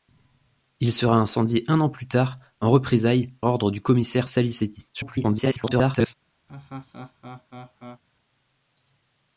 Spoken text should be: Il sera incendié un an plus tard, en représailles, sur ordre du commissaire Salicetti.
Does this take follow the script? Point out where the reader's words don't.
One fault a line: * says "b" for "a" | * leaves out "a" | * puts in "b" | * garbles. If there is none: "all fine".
* leaves out "sur"
* garbles